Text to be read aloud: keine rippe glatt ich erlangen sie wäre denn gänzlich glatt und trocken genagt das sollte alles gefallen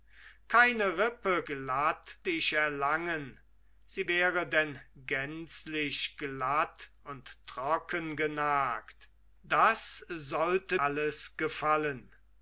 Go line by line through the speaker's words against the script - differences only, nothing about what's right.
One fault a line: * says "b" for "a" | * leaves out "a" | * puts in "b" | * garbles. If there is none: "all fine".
all fine